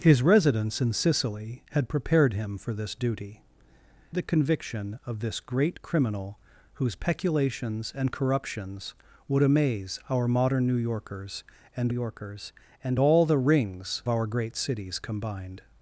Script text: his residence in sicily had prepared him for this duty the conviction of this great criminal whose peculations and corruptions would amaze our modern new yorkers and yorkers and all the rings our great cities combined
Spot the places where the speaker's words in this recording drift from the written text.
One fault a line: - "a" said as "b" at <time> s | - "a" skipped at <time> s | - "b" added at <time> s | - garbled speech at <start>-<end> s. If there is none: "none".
none